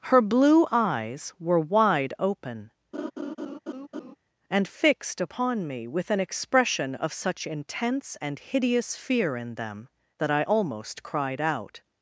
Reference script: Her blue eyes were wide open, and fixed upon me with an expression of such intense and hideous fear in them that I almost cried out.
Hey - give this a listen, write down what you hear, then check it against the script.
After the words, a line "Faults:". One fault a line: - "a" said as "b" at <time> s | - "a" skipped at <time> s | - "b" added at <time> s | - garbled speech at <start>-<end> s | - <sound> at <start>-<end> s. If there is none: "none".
Her blue eyes were wide open, and fixed upon me with an expression of such intense and hideous fear in them that I almost cried out.
Faults:
- laugh at 2.9-4.2 s